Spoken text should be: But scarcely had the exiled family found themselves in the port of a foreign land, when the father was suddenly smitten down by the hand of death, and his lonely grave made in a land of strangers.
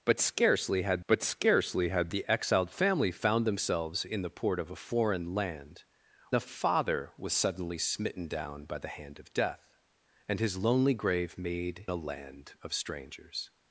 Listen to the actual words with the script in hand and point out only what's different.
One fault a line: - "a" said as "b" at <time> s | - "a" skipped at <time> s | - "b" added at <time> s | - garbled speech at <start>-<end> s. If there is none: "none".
- "but scarcely had" added at 1.0 s
- "when" skipped at 5.8 s
- "in" skipped at 11.9 s